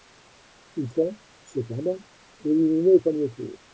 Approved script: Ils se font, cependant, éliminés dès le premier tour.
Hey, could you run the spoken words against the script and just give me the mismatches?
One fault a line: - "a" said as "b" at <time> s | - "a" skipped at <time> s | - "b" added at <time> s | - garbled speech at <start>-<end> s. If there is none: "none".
- "se" skipped at 0.9 s
- "dès le" skipped at 3.0 s